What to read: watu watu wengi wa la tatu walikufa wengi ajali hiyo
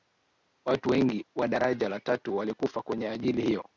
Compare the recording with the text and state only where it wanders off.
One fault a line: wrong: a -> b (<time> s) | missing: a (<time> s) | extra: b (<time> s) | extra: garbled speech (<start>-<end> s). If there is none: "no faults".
missing: watu (0.9 s)
extra: daraja (1.5 s)
wrong: wengi -> kwenye (2.8 s)